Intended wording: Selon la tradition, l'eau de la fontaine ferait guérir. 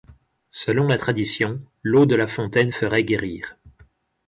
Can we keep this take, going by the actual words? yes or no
yes